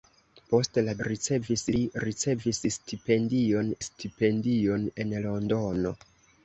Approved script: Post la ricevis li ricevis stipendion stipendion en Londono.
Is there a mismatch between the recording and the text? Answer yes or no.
no